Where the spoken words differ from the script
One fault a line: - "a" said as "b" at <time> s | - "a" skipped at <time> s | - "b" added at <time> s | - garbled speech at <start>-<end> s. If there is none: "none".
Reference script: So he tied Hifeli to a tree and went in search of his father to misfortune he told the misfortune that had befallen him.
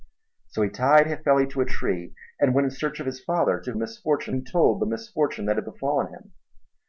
none